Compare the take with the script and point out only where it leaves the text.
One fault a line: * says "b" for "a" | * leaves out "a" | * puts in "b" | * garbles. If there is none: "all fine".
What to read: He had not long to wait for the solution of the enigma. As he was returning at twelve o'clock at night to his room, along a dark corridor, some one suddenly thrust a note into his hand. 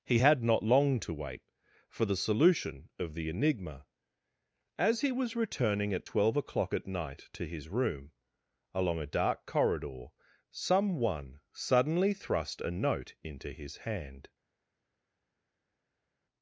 all fine